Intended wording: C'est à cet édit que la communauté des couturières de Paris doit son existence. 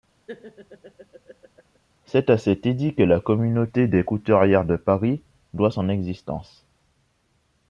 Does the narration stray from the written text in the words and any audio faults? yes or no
yes